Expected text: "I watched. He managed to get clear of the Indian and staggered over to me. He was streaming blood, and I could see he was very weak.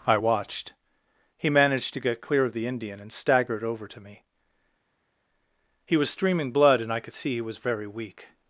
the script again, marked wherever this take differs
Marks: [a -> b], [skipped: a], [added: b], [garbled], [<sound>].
"I watched. He managed to get clear of the Indian and staggered over to me. He was streaming blood, and I could see he was very weak.